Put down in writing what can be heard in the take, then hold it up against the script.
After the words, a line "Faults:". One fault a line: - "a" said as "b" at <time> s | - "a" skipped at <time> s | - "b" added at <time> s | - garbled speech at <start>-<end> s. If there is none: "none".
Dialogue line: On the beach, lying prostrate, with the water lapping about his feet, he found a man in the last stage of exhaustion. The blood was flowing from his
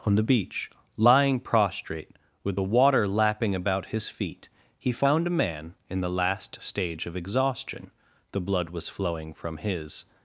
On the beach, lying prostrate, with the water lapping about his feet, he found a man in the last stage of exhaustion. The blood was flowing from his
Faults:
none